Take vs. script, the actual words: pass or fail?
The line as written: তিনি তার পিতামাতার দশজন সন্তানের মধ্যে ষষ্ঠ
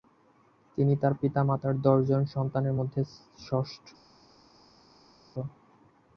pass